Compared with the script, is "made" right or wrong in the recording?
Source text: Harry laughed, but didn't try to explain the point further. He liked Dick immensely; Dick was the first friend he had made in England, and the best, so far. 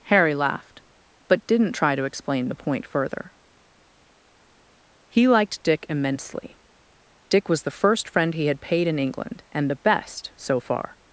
wrong